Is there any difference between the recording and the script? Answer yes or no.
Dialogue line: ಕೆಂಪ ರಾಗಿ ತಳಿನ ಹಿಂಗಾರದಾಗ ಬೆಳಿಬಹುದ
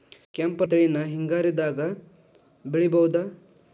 yes